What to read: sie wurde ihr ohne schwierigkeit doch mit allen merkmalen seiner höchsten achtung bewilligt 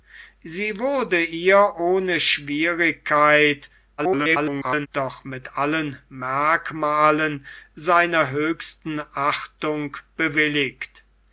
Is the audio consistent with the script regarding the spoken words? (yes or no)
no